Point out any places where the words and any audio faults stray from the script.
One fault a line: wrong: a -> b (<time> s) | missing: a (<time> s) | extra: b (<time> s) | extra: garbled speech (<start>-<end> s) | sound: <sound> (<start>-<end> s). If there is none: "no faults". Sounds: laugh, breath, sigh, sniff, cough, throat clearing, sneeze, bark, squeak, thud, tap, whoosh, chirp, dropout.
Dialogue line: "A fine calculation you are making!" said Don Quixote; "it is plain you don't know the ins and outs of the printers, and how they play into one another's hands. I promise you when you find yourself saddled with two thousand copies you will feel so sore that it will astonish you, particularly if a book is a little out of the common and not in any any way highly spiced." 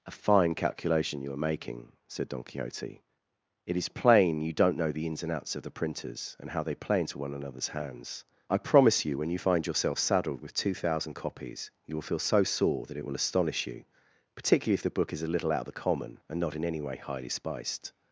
wrong: a -> the (14.8 s)
missing: any (16.8 s)